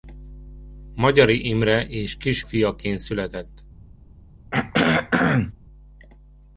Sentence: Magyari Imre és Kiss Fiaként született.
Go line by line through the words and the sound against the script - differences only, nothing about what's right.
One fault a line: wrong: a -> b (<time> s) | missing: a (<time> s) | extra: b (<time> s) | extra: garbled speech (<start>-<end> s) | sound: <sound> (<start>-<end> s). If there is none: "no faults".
sound: throat clearing (4.5-5.5 s)